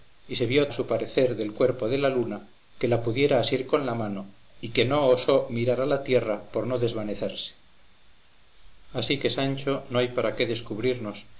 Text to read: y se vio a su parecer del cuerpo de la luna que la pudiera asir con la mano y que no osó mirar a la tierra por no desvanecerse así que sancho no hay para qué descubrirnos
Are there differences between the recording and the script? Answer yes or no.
no